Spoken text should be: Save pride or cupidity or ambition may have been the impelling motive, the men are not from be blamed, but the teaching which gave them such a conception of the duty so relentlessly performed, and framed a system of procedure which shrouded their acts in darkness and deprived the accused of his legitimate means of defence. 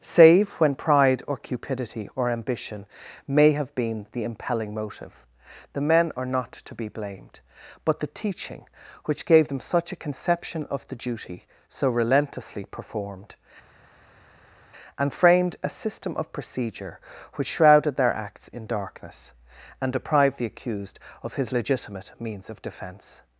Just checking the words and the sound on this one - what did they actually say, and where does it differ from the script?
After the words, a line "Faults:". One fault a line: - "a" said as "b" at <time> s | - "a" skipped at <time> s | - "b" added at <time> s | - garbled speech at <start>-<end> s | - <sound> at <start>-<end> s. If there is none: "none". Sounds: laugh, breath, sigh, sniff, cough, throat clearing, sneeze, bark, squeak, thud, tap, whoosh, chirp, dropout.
Save when pride or cupidity or ambition may have been the impelling motive, the men are not to be blamed, but the teaching which gave them such a conception of the duty so relentlessly performed, and framed a system of procedure which shrouded their acts in darkness and deprived the accused of his legitimate means of defence.
Faults:
- "when" added at 0.5 s
- "from" said as "to" at 6.5 s